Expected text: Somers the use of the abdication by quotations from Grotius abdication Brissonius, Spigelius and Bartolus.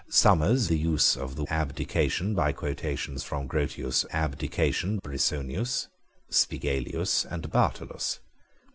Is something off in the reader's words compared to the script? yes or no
no